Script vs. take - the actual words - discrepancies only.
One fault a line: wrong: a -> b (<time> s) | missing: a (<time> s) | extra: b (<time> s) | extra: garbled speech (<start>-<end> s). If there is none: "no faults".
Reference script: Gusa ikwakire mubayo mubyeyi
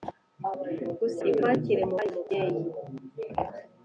no faults